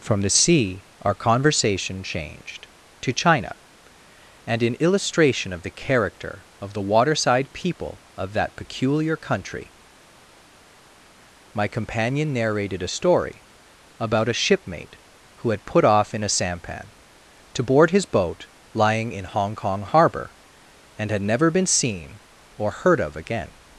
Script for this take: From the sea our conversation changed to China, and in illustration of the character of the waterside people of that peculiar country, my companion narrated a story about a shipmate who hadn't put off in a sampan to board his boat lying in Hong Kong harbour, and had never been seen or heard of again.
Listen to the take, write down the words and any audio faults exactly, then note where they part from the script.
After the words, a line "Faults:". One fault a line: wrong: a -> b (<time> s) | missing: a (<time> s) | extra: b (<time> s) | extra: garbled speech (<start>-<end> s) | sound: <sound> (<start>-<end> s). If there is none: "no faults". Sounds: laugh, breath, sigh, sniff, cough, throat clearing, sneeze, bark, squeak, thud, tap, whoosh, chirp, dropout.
From the sea our conversation changed to China, and in illustration of the character of the waterside people of that peculiar country, my companion narrated a story about a shipmate who had put off in a sampan to board his boat lying in Hong Kong harbour, and had never been seen or heard of again.
Faults:
wrong: hadn't -> had (15.5 s)